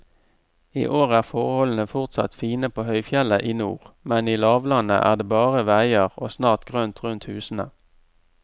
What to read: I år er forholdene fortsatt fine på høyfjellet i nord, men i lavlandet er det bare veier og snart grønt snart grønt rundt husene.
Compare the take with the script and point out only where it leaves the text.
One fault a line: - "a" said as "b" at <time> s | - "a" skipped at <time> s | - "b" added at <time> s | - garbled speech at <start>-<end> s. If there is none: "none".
- "snart grønt" skipped at 7.0 s